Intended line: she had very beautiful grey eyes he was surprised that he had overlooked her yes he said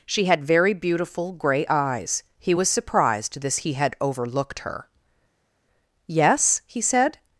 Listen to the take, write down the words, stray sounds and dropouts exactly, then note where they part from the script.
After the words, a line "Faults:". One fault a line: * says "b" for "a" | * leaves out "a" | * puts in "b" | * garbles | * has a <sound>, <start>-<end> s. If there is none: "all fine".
she had very beautiful grey eyes he was surprised this he had overlooked her yes he said
Faults:
* says "this" for "that"